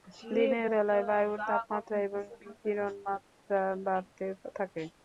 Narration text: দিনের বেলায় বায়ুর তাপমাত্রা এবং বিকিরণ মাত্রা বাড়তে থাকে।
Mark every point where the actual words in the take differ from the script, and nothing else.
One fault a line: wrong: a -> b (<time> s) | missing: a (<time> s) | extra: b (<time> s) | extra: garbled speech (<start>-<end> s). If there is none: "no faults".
no faults